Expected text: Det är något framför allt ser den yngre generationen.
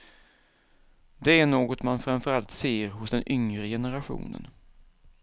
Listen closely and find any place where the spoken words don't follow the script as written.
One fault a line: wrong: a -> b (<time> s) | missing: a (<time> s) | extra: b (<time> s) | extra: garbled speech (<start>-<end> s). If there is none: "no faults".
extra: man (1.8 s)
extra: hos (2.9 s)